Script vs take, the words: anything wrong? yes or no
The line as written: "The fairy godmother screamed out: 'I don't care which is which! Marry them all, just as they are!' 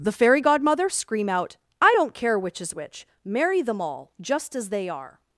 yes